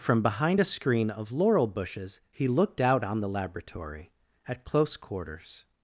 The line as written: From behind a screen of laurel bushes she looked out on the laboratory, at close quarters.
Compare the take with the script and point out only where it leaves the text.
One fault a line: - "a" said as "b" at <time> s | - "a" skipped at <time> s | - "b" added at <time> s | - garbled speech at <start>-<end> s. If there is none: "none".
- "she" said as "he" at 2.3 s